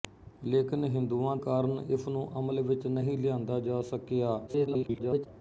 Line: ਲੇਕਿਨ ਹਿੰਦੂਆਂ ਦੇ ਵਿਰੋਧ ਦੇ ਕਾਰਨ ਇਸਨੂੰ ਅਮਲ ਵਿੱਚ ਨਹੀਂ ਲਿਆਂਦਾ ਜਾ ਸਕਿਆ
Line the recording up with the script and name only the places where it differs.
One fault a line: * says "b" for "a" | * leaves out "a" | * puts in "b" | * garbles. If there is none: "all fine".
* leaves out "ਦੇ ਵਿਰੋਧ ਦੇ"
* garbles